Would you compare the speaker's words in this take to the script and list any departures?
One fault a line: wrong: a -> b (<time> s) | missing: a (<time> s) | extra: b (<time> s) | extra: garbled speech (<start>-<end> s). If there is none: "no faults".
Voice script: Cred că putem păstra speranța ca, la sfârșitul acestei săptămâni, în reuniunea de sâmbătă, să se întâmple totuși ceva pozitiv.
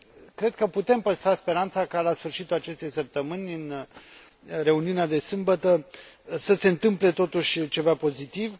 no faults